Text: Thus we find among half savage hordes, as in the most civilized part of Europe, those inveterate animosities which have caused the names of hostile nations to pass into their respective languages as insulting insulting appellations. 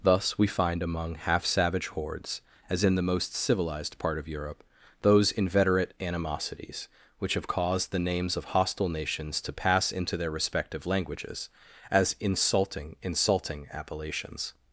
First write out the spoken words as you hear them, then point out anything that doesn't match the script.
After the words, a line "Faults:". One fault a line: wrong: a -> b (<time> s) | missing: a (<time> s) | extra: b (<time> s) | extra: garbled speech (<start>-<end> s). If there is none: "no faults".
Thus we find among half savage hordes, as in the most civilized part of Europe, those inveterate animosities which have caused the names of hostile nations to pass into their respective languages as insulting insulting appellations.
Faults:
no faults